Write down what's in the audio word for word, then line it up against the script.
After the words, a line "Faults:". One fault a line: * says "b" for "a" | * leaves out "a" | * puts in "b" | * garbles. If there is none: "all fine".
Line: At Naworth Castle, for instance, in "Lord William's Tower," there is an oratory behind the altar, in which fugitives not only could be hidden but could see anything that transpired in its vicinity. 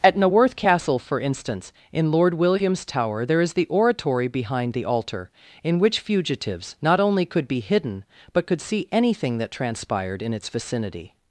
At Naworth Castle, for instance, in "Lord William's Tower," there is the oratory behind the altar, in which fugitives not only could be hidden but could see anything that transpired in its vicinity.
Faults:
* says "the" for "an"